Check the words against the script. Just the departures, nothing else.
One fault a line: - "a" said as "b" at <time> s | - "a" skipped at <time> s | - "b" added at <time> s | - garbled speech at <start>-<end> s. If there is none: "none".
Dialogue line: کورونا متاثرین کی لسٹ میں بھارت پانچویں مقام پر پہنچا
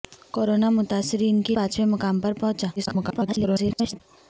- "لسٹ میں بھارت" skipped at 1.6 s
- garbled speech at 2.8-4.0 s